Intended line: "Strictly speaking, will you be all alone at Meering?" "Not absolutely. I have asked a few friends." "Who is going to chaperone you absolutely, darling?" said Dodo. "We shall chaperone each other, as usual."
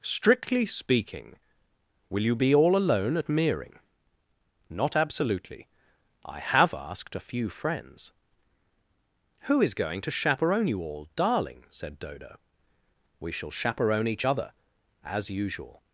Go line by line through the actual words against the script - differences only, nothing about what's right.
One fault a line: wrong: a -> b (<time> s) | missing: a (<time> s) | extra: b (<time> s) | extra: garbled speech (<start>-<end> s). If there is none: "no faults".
wrong: absolutely -> all (10.8 s)